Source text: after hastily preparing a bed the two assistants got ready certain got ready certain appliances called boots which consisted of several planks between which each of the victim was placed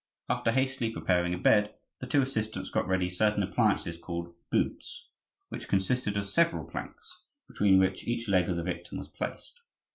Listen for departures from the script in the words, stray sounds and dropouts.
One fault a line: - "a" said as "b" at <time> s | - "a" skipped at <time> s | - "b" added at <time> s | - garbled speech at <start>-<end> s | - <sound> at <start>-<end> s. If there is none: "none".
- "got ready certain" skipped at 3.4 s
- "leg" added at 8.3 s